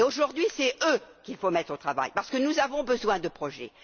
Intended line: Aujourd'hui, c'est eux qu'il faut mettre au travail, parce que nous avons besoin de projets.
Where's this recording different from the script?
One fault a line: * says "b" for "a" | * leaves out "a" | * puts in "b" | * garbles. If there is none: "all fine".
all fine